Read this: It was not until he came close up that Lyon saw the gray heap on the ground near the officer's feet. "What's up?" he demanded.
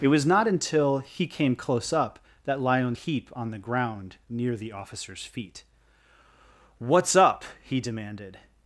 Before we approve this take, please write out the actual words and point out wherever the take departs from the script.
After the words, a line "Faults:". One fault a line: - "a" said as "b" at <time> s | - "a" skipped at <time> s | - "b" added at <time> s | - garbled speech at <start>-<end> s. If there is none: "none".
It was not until he came close up that Lyon heap on the ground near the officer's feet. "What's up?" he demanded.
Faults:
- "saw the gray" skipped at 3.0 s